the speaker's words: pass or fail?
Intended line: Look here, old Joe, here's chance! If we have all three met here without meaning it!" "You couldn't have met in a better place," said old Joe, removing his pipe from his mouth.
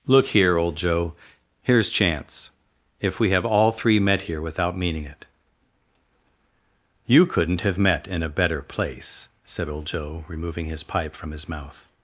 pass